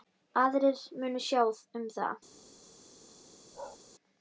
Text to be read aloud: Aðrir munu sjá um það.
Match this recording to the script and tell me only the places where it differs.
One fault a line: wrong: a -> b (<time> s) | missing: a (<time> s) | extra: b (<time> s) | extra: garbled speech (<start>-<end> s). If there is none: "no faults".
no faults